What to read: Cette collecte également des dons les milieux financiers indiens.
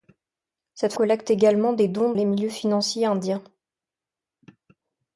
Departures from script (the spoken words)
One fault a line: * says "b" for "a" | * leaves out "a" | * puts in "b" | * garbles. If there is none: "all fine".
all fine